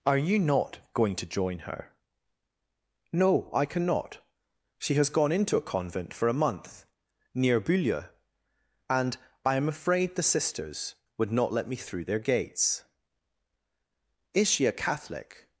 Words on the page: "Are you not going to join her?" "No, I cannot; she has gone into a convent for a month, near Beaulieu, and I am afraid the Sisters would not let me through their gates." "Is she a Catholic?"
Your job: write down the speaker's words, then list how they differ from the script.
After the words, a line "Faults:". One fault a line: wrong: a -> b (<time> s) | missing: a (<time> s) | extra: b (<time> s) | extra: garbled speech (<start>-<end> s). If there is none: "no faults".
"Are you not going to join her?" "No, I cannot; she has gone into a convent for a month, near Beaulieu, and I am afraid the Sisters would not let me through their gates." "Is she a Catholic?"
Faults:
no faults